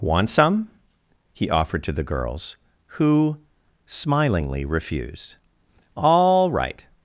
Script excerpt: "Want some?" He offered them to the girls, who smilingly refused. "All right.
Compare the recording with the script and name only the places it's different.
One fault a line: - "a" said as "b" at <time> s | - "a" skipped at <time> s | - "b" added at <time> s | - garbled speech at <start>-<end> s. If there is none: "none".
- "them" skipped at 1.8 s